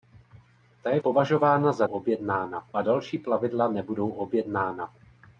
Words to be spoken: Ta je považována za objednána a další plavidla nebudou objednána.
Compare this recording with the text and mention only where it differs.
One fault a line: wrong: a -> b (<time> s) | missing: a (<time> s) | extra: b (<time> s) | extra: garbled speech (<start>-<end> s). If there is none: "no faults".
no faults